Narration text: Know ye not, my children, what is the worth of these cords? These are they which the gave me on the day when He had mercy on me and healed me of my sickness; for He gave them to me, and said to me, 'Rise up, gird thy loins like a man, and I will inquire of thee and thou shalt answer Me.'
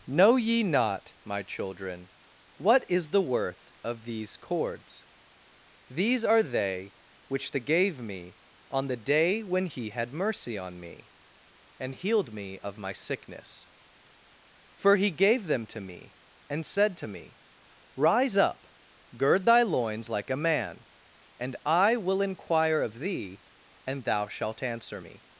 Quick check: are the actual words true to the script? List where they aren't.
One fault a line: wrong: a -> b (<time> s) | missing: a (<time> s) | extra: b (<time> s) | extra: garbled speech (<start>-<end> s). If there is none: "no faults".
no faults